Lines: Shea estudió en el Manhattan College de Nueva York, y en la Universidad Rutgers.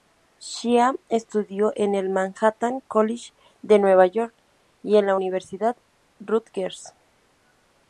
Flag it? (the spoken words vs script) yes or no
no